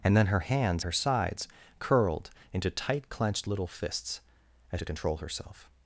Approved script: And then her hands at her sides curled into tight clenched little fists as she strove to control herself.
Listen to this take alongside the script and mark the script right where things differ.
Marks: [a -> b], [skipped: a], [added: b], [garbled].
And then her hands [skipped: at] her sides curled into tight clenched little fists as [skipped: she strove] to control herself.